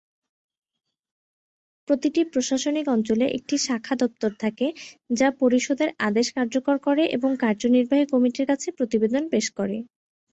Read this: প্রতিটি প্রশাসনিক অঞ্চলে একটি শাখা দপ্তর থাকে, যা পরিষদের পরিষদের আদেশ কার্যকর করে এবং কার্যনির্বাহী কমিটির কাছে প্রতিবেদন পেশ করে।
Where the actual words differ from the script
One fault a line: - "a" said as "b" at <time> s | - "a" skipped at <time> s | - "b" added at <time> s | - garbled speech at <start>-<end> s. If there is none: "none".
- "পরিষদের" skipped at 5.9 s